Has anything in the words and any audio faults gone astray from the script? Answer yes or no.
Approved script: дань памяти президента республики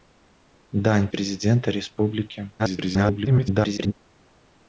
yes